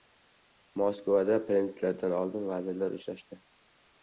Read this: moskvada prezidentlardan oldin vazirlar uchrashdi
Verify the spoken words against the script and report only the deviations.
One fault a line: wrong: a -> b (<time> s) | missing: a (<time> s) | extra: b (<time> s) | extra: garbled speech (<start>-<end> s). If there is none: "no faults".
no faults